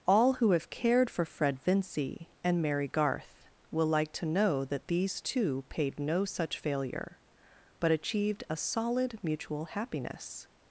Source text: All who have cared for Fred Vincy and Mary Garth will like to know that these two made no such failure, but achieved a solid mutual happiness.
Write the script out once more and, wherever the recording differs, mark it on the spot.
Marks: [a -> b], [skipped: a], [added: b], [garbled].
All who have cared for Fred Vincy and Mary Garth will like to know that these two [made -> paid] no such failure, but achieved a solid mutual happiness.